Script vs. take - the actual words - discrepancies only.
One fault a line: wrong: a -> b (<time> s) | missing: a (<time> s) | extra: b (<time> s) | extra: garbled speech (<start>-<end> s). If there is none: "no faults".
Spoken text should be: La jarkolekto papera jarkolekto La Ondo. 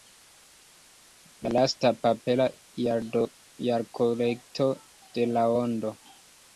wrong: jarkolekto -> lasta (1.6 s)
extra: de (5.2 s)